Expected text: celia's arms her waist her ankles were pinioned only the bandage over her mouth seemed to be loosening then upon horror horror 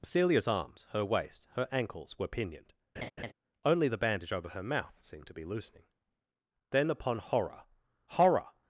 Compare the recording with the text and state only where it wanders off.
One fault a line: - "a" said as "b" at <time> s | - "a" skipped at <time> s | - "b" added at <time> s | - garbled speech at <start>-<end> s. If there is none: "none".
none